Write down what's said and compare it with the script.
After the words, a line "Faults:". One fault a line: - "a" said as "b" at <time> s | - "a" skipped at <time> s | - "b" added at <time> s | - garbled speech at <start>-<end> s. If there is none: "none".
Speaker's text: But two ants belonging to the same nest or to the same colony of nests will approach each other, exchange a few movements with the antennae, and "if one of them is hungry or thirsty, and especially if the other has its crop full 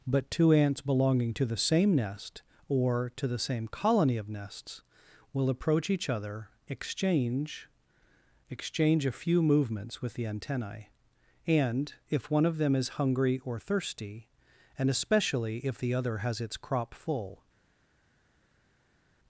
But two ants belonging to the same nest or to the same colony of nests will approach each other, exchange exchange a few movements with the antennae, and "if one of them is hungry or thirsty, and especially if the other has its crop full
Faults:
- "exchange" added at 8.5 s